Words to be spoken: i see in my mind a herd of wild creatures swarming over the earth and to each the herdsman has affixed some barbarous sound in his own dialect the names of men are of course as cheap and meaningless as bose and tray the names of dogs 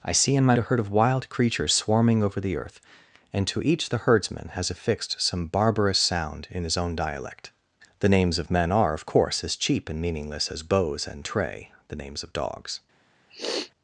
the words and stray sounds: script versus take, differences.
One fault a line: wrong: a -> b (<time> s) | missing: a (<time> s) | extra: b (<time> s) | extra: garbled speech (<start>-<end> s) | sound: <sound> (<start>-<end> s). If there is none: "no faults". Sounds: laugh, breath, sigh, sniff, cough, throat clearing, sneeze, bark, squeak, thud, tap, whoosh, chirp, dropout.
missing: mind (0.6 s)
sound: sniff (13.3-13.7 s)